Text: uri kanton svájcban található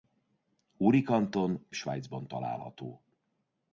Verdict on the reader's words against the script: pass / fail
pass